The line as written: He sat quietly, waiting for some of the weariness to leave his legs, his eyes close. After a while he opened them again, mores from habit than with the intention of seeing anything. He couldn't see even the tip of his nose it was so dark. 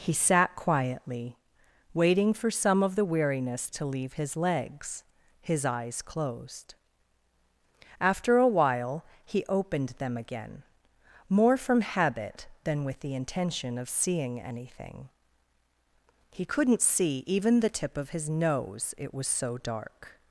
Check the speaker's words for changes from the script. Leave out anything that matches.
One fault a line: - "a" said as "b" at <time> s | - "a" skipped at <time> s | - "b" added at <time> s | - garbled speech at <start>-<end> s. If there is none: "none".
- "close" said as "closed" at 6.0 s
- "mores" said as "more" at 11.3 s